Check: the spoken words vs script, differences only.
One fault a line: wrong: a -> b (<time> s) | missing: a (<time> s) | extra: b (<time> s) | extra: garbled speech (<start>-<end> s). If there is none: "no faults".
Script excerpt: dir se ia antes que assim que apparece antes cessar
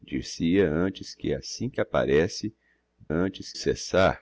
no faults